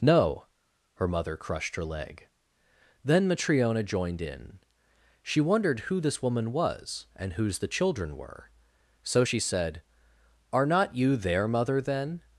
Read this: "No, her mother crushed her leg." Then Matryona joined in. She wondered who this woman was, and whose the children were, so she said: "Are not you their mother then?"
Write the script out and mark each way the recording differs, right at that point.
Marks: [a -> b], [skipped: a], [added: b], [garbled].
"No, her mother crushed her leg." Then Matryona joined in. She wondered who this woman was, and whose the children were, so she said: "Are not you their mother then?"